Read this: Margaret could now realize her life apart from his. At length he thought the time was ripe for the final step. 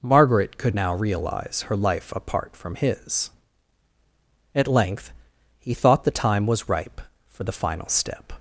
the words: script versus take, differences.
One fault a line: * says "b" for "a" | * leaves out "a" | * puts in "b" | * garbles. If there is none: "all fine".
all fine